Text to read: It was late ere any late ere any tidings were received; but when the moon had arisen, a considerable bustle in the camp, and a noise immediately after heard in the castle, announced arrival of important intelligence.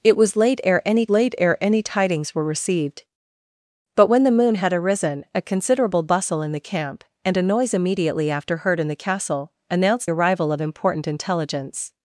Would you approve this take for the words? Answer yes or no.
yes